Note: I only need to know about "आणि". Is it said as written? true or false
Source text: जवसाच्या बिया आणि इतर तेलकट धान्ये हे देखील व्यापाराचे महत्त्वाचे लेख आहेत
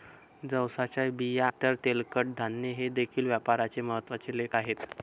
false